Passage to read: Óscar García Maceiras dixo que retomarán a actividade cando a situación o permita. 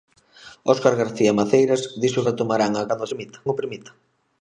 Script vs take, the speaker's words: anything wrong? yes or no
yes